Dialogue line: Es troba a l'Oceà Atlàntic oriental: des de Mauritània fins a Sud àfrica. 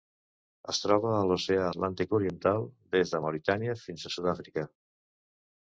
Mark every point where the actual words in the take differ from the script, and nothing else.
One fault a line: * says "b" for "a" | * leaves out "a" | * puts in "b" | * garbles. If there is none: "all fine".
all fine